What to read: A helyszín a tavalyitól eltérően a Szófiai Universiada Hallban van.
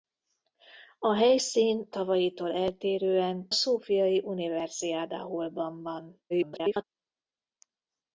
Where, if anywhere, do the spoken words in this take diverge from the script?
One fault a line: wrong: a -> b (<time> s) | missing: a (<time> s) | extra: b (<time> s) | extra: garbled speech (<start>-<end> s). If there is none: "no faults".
missing: a (1.9 s)
missing: a (3.5 s)
extra: garbled speech (6.3-6.8 s)